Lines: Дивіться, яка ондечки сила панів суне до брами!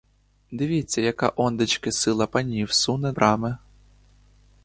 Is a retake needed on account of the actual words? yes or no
yes